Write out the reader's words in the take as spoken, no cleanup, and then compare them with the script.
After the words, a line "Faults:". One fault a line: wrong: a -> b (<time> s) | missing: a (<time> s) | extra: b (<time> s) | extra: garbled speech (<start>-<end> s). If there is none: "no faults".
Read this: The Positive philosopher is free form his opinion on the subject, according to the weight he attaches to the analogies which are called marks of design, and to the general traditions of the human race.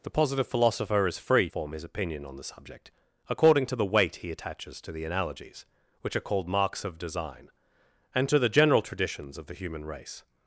The Positive philosopher is free form his opinion on the subject, according to the weight he attaches to the analogies which are called marks of design, and to the general traditions of the human race.
Faults:
no faults